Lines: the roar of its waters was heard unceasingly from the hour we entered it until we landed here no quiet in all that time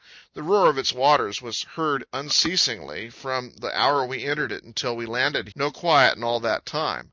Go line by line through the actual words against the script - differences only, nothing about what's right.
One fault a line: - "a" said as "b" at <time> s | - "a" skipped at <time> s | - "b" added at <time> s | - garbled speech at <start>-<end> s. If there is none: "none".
- "here" skipped at 5.5 s